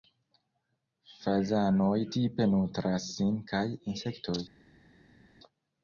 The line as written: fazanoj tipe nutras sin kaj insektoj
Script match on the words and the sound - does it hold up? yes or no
yes